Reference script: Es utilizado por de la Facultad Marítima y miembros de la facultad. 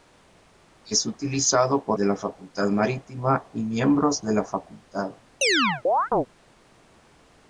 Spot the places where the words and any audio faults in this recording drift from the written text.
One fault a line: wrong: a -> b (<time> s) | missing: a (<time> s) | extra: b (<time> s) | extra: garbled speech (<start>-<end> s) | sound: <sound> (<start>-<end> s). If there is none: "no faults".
sound: chirp (5.4-6.3 s)